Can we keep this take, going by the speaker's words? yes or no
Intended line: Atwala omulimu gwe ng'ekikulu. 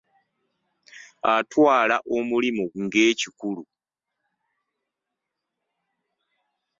no